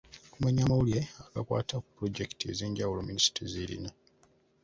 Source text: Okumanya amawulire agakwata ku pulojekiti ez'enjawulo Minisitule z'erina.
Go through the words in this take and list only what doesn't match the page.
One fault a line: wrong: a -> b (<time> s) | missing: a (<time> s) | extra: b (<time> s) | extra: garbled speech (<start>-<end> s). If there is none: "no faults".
no faults